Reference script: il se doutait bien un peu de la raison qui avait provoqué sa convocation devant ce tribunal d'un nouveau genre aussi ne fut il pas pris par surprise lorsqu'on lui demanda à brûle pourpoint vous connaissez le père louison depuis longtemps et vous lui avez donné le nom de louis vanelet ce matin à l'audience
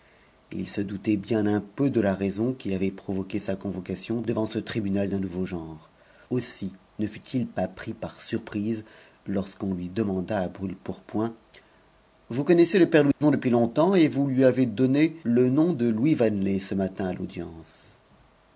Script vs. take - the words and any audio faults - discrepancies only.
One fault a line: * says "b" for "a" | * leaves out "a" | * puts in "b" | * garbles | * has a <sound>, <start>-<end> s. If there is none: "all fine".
* has a dropout, 13.1-13.2 s